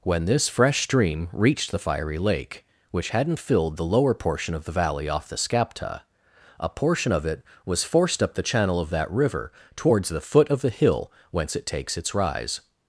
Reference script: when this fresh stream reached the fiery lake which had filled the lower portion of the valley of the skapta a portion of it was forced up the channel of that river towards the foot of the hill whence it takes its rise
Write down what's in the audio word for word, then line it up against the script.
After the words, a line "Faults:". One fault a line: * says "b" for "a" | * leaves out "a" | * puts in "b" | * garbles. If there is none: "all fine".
when this fresh stream reached the fiery lake which hadn't filled the lower portion of the valley off the skapta a portion of it was forced up the channel of that river towards the foot of the hill whence it takes its rise
Faults:
* says "hadn't" for "had"
* says "off" for "of"